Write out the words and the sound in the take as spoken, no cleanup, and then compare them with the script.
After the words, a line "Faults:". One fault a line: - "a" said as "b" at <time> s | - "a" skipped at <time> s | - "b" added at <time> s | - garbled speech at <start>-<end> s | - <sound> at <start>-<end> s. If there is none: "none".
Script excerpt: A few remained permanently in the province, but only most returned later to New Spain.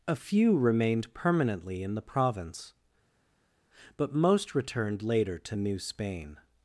A few remained permanently in the province, but most returned later to New Spain.
Faults:
- "only" skipped at 4.1 s